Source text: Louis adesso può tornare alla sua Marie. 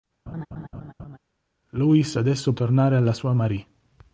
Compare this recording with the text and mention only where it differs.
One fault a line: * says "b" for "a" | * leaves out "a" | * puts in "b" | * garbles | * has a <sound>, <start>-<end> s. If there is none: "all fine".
* has a laugh, 0.3-1.2 s
* leaves out "può"